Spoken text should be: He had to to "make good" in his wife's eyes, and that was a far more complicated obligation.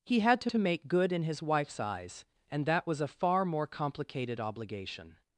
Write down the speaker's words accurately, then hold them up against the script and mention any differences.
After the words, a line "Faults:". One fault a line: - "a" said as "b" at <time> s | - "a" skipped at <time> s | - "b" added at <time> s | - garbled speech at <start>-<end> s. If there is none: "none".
He had to to "make good" in his wife's eyes, and that was a far more complicated obligation.
Faults:
none